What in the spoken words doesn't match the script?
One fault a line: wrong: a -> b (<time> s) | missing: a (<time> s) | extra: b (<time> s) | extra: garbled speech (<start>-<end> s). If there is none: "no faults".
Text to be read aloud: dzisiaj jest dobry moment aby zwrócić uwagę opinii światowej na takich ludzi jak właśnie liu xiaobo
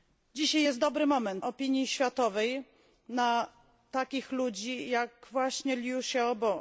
missing: aby zwrócić uwagę (1.5 s)